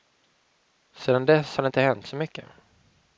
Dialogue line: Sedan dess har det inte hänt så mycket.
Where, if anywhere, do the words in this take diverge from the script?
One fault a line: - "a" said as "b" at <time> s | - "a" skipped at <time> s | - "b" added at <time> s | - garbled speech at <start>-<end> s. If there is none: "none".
none